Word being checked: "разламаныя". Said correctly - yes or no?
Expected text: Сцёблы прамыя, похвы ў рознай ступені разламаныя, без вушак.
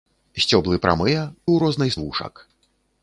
no